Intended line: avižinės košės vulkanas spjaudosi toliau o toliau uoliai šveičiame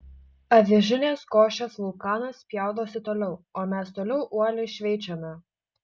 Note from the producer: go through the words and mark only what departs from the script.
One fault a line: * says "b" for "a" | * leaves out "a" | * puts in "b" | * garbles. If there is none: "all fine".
* puts in "mes"